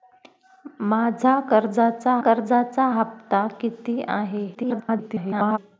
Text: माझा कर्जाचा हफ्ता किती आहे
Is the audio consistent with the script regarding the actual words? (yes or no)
no